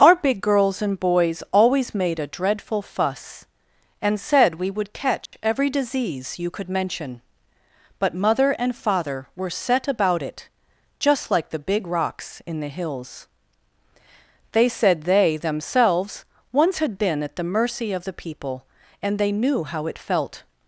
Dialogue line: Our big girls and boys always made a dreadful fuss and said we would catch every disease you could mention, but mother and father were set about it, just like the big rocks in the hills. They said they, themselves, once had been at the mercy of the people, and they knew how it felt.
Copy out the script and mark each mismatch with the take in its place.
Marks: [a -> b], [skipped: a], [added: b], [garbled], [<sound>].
Our big girls and boys always made a dreadful fuss and said we would catch [dropout] every disease you could mention, but mother and father were set about it, just like the big rocks in the hills. They said they, themselves, once had been at the mercy of the people, and they knew how it felt.